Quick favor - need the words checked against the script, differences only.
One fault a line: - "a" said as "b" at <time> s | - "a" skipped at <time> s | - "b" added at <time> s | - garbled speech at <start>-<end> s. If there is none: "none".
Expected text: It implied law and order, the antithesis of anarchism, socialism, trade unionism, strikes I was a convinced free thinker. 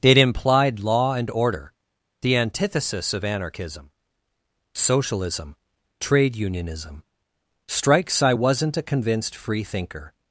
- "was" said as "wasn't" at 8.3 s